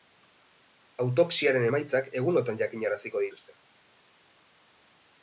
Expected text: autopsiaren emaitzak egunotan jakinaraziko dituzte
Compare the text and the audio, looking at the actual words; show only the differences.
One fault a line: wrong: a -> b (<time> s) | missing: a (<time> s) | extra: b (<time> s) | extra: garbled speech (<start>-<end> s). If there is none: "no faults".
no faults